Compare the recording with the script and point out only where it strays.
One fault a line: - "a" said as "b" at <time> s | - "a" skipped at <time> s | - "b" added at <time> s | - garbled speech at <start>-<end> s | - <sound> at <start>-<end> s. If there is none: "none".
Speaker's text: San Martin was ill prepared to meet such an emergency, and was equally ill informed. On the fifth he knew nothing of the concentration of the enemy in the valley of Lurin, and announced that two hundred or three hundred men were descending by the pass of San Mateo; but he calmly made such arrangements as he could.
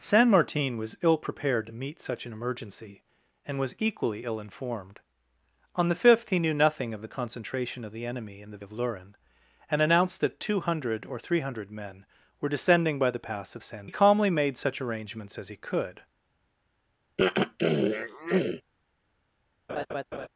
- "valley" skipped at 8.6 s
- "Mateo but" skipped at 13.9 s
- throat clearing at 17.2-18.6 s
- laugh at 19.7-20.3 s